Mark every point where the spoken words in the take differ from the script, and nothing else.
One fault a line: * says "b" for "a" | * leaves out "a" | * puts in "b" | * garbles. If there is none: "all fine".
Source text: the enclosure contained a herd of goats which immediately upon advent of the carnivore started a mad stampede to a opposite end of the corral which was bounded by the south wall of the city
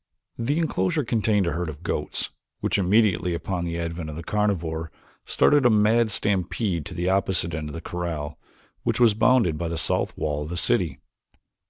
* puts in "the"
* says "the" for "a"